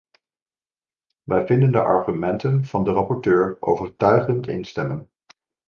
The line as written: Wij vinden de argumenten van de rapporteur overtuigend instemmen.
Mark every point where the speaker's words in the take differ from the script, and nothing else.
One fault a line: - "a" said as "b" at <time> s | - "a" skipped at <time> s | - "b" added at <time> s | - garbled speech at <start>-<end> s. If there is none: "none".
none